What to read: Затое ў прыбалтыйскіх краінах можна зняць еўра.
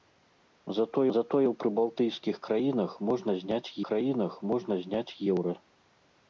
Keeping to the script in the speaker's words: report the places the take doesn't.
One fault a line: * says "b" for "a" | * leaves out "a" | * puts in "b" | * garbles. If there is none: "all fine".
* puts in "затое"
* puts in "краінах можна зняць"